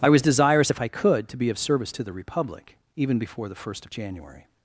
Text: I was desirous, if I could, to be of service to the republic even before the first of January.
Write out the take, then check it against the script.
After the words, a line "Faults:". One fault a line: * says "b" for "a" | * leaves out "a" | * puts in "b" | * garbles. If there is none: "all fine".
I was desirous, if I could, to be of service to the republic even before the first of January.
Faults:
all fine